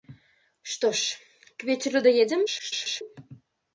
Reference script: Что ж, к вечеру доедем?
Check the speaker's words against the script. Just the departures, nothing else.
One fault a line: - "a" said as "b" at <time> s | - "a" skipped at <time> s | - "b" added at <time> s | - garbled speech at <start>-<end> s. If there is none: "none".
- garbled speech at 2.5-3.0 s